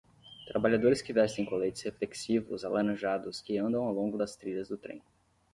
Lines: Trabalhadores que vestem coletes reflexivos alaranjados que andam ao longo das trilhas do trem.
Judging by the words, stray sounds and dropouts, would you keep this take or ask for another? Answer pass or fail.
pass